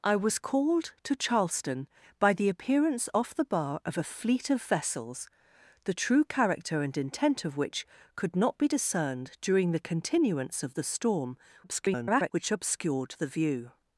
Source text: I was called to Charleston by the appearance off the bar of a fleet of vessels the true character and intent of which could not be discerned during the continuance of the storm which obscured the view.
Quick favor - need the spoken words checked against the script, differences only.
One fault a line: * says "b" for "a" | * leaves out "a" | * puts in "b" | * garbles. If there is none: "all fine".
* garbles